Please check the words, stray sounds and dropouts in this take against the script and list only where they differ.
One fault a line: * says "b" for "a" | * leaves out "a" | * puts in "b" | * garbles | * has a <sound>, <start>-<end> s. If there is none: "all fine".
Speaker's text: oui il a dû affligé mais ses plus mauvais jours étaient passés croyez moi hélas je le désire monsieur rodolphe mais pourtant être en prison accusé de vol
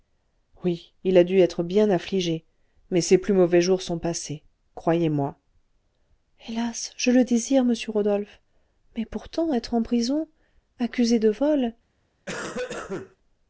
* puts in "être bien"
* says "sont" for "étaient"
* has a cough, 12.3-13.2 s